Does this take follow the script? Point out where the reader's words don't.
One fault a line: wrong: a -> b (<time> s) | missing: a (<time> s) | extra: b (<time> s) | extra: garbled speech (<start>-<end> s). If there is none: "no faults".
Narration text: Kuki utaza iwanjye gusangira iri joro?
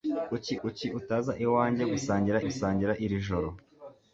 extra: kuki (0.6 s)
extra: gusangira (2.4 s)